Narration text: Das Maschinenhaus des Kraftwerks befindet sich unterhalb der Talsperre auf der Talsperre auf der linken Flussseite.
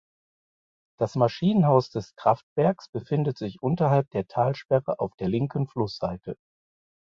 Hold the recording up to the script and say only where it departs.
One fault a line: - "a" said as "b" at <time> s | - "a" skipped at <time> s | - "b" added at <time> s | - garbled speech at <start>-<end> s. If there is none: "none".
- "Talsperre auf der" skipped at 5.3 s